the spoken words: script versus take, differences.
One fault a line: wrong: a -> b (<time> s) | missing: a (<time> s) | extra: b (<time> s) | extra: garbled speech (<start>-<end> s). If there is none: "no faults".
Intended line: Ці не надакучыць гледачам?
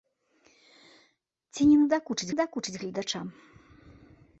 extra: надакучыць (2.3 s)